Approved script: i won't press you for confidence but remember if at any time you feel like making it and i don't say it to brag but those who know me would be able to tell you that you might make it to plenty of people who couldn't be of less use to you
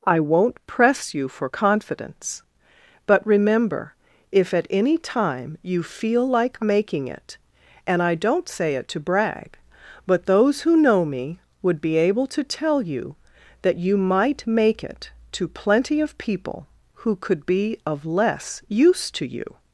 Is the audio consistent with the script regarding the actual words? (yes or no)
no